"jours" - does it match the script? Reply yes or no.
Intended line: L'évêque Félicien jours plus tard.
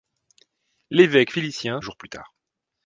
yes